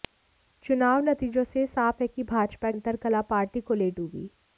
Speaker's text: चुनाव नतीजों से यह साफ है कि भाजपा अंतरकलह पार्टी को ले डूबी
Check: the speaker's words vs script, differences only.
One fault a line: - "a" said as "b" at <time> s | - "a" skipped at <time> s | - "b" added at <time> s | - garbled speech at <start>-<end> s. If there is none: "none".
none